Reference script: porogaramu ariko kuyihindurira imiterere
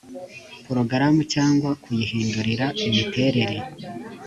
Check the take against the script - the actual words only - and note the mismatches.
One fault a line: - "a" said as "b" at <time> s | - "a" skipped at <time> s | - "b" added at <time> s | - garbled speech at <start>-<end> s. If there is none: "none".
- "ariko" said as "cyangwa" at 1.3 s